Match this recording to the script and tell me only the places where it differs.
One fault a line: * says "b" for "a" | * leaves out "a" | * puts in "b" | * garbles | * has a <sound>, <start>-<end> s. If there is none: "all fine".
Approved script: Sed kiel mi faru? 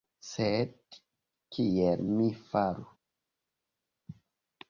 all fine